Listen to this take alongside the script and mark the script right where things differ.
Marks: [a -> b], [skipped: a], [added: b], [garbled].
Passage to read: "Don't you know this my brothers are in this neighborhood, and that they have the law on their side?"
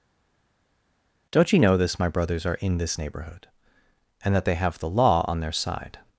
"Don't you know this my brothers are in this neighborhood, and that they have the law on their side?"